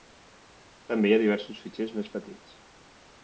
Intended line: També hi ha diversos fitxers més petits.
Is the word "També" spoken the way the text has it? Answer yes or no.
yes